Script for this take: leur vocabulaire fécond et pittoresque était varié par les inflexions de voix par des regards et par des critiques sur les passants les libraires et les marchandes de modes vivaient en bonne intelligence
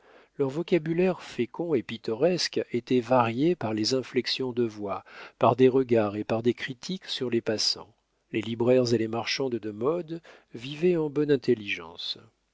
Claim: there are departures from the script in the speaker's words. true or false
false